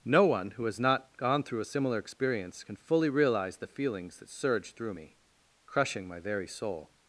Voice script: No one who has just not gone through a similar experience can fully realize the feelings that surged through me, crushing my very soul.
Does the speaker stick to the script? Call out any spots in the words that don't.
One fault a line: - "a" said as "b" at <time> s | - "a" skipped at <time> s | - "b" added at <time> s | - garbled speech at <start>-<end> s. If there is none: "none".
- "just" skipped at 0.8 s